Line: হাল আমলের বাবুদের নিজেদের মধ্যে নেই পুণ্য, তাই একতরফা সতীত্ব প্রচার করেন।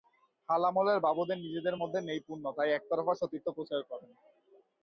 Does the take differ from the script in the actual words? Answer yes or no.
no